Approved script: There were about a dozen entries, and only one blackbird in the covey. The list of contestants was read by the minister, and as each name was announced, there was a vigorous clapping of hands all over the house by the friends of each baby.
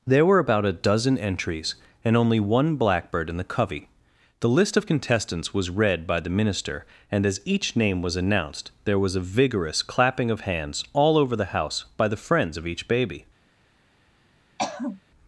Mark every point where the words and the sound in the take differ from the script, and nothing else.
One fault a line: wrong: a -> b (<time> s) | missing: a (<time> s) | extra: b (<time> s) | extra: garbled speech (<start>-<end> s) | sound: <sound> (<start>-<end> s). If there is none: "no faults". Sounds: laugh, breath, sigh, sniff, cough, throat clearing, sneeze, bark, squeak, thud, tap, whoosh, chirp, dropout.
sound: throat clearing (14.6-15.0 s)